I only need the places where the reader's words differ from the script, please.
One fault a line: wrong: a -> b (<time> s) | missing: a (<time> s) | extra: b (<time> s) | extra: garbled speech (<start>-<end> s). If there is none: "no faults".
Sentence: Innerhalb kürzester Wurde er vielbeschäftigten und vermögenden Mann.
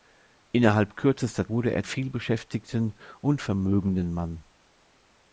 no faults